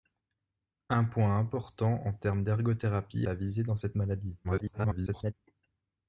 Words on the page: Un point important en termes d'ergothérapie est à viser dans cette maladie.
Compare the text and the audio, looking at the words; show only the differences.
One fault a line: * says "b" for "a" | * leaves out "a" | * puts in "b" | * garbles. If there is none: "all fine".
* leaves out "est"
* garbles